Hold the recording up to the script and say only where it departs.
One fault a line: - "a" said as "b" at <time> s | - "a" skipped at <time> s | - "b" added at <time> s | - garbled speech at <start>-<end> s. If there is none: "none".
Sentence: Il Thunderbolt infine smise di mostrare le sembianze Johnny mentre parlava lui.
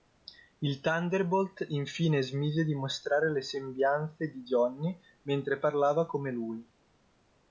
- "di" added at 4.3 s
- "come" added at 6.1 s